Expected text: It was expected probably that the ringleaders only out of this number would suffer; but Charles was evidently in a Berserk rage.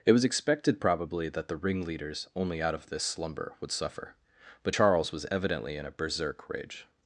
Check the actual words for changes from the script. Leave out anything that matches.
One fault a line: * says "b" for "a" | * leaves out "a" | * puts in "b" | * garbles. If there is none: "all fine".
* says "slumber" for "number"